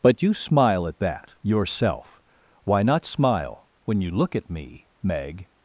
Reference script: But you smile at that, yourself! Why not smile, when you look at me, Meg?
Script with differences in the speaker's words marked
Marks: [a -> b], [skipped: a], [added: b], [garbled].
But you smile at that, yourself! Why not smile, when you look at me, Meg?